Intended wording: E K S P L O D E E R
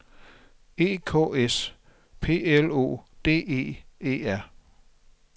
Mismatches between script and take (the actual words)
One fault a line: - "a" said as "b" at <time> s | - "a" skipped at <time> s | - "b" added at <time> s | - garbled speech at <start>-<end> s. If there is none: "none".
none